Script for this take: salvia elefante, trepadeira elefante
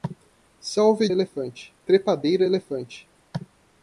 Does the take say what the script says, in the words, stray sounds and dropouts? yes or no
yes